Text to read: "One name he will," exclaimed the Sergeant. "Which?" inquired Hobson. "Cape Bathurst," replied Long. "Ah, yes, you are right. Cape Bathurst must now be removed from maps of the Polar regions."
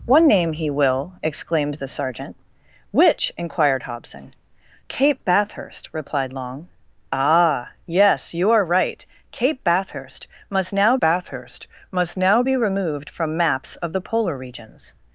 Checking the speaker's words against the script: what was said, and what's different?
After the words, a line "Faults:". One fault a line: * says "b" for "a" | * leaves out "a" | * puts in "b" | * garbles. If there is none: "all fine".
"One name he will," exclaimed the Sergeant. "Which?" inquired Hobson. "Cape Bathurst," replied Long. "Ah, yes, you are right. Cape Bathurst must now Bathurst must now be removed from maps of the Polar regions."
Faults:
* puts in "Bathurst must now"